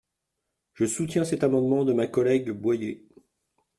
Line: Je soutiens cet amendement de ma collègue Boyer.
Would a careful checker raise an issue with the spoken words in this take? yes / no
no